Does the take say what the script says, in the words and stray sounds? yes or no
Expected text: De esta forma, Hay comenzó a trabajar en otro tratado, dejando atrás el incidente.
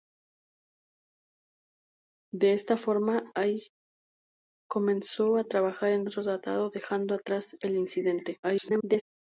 no